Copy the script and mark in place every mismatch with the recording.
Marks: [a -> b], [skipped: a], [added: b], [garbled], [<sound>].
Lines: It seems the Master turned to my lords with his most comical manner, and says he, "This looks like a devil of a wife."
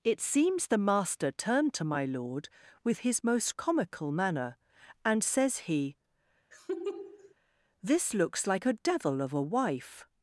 It seems the Master turned to my [lords -> lord] with his most comical manner, and says he, [laugh] "This looks like a devil of a wife."